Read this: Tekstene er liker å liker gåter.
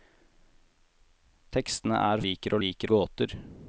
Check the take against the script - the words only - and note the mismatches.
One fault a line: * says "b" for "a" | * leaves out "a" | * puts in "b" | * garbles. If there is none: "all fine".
all fine